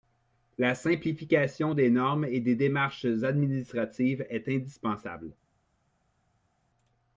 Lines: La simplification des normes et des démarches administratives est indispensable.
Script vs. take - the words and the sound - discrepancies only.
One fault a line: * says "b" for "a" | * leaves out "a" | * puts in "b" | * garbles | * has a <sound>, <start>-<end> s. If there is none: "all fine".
all fine